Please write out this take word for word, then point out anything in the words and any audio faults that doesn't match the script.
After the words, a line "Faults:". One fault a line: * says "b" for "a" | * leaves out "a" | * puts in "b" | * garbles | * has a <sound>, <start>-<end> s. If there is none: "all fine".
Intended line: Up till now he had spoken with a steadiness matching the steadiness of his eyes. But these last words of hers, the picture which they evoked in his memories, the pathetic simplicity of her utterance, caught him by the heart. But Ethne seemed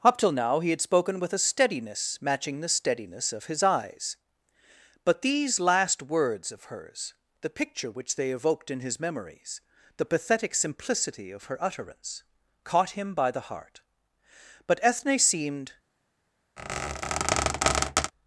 Up till now he had spoken with a steadiness matching the steadiness of his eyes. But these last words of hers, the picture which they evoked in his memories, the pathetic simplicity of her utterance, caught him by the heart. But Ethne seemed
Faults:
* has a squeak, 16.6-18.1 s